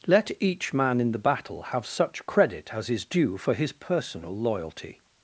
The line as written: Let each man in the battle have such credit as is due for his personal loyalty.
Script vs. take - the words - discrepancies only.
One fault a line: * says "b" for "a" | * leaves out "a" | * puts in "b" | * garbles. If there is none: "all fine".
all fine